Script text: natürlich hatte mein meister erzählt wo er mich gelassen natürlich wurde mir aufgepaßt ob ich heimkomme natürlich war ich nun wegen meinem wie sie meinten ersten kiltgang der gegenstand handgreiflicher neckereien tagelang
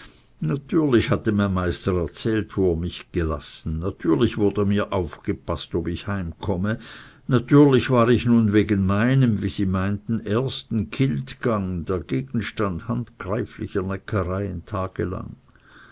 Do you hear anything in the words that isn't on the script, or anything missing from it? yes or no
no